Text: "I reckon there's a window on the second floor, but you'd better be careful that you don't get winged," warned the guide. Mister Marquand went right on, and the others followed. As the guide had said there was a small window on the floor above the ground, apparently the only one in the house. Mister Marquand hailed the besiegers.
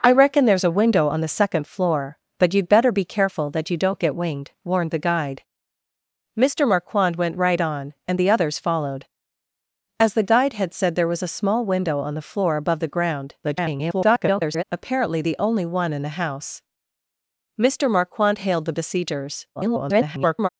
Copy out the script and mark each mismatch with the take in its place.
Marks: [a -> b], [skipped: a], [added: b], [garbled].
"I reckon there's a window on the second floor, but you'd better be careful that you don't get winged," warned the guide. Mister Marquand went right on, and the others followed. As the guide had said there was a small window on the floor above the ground, [garbled] apparently the only one in the house. Mister Marquand hailed the besiegers. [garbled]